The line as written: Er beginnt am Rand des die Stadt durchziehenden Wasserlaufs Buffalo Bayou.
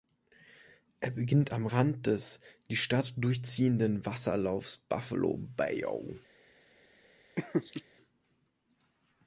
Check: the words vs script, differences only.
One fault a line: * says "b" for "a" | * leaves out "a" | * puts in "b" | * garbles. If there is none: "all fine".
all fine